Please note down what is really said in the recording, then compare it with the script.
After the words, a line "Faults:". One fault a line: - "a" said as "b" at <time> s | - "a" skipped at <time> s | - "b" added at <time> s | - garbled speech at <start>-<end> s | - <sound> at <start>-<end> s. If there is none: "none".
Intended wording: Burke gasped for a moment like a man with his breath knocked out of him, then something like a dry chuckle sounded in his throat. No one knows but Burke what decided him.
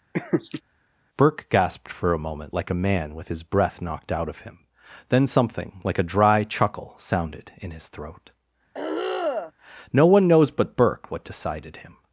Burke gasped for a moment like a man with his breath knocked out of him, then something like a dry chuckle sounded in his throat. No one knows but Burke what decided him.
Faults:
- laugh at 0.1-0.6 s
- throat clearing at 8.7-9.5 s